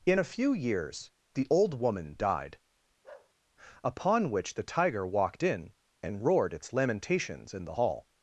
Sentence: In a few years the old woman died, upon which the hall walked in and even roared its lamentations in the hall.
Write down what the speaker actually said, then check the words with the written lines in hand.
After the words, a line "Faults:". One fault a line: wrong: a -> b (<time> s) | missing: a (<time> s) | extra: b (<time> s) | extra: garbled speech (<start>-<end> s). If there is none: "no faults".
In a few years the old woman died, upon which the tiger walked in and roared its lamentations in the hall.
Faults:
wrong: hall -> tiger (4.6 s)
missing: even (6.2 s)